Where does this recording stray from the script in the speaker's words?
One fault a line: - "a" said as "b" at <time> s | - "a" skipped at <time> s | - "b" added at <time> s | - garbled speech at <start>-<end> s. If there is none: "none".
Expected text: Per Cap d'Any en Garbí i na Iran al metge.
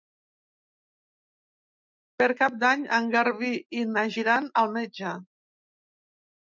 none